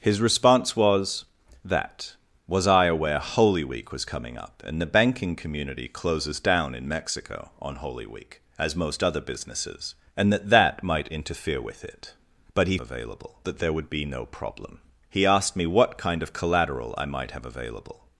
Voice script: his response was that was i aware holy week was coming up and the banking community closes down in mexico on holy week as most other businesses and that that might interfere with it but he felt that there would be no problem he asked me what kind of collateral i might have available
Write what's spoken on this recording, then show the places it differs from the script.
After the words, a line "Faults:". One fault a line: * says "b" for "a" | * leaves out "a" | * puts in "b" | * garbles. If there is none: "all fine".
his response was that was i aware holy week was coming up and the banking community closes down in mexico on holy week as most other businesses and that that might interfere with it but he available that there would be no problem he asked me what kind of collateral i might have available
Faults:
* says "available" for "felt"